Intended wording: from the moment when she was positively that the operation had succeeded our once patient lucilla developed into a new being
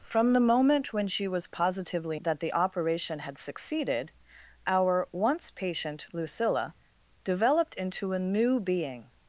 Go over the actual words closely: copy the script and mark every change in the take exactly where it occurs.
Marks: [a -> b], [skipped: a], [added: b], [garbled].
from the moment when she was positively that the operation had succeeded our once patient lucilla developed into a new being